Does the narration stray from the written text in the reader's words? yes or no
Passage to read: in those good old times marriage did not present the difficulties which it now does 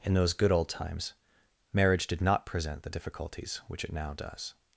no